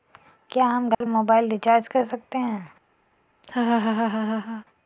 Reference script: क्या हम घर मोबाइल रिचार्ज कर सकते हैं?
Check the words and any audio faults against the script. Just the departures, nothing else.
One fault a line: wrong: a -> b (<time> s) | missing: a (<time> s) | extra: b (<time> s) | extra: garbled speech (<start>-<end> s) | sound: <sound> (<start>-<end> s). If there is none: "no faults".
sound: dropout (0.9-1.0 s)
sound: laugh (3.4-4.6 s)